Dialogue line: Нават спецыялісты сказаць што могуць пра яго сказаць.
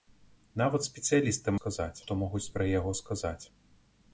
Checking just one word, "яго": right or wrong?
right